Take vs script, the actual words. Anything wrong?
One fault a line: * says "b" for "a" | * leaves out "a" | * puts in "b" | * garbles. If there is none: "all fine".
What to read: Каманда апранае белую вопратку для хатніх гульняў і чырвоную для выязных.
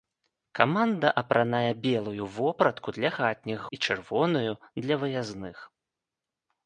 * leaves out "гульняў"